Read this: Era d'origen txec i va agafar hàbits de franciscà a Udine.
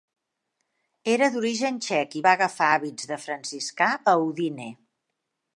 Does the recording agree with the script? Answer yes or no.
yes